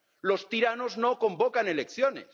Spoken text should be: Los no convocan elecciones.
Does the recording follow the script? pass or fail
fail